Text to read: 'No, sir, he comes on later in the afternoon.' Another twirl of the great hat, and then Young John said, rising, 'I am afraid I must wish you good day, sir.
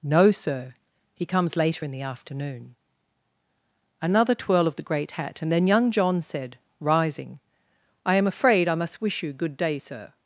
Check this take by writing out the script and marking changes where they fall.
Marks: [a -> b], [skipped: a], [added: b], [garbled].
'No, sir, he comes [skipped: on] later in the afternoon.' Another twirl of the great hat, and then Young John said, rising, 'I am afraid I must wish you good day, sir.